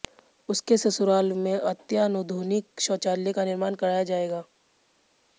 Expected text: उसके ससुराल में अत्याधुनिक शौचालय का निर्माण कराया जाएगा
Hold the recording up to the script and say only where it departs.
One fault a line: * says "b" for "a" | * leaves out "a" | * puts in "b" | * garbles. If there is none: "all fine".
all fine